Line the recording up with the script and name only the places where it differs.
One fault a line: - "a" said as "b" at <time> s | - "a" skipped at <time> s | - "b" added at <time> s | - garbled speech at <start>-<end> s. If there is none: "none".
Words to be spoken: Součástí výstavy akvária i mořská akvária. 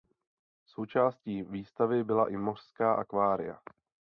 - "akvária" said as "byla" at 2.0 s